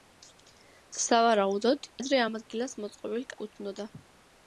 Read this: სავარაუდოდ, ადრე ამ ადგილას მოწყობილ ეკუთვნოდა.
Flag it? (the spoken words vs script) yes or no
no